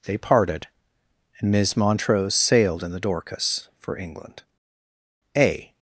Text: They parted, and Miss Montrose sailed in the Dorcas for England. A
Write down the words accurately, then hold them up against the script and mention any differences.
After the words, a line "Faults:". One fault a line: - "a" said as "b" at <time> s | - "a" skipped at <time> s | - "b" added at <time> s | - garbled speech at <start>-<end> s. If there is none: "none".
They parted, and Miss Montrose sailed in the Dorcas for England. A
Faults:
none